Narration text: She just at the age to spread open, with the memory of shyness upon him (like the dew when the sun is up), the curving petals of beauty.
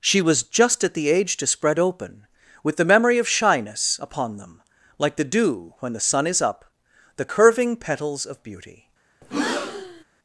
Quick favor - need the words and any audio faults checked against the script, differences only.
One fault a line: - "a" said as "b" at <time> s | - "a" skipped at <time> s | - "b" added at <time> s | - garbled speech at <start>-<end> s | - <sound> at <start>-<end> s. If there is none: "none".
- "was" added at 0.2 s
- "him" said as "them" at 4.4 s
- breath at 9.2-10.0 s